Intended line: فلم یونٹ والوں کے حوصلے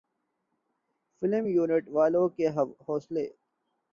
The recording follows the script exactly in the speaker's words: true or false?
true